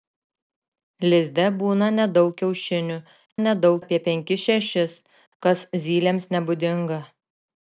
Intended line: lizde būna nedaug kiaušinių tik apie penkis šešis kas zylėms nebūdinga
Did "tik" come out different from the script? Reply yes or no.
yes